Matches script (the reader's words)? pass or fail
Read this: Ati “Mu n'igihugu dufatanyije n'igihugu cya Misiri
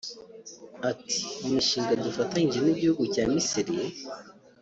fail